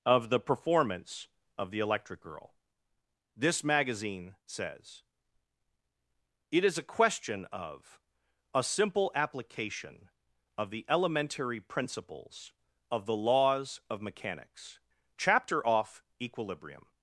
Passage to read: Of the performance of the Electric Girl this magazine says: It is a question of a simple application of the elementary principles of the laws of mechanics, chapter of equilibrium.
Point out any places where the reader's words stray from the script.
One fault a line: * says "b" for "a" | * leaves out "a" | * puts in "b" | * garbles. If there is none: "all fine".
* says "off" for "of"